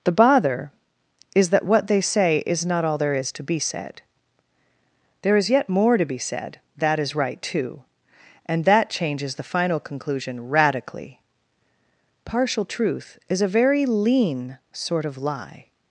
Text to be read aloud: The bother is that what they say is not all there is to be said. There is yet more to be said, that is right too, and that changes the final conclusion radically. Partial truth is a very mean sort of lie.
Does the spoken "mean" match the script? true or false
false